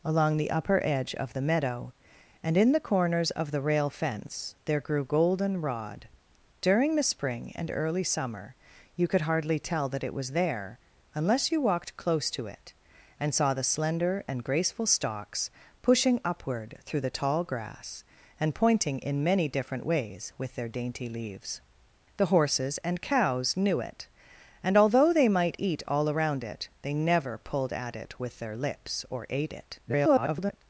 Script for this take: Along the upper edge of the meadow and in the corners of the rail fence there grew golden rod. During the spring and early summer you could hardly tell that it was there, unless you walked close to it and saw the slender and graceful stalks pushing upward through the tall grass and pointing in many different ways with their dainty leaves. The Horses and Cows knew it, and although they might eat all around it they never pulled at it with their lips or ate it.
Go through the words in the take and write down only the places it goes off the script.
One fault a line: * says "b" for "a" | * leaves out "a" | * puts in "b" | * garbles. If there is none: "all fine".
* garbles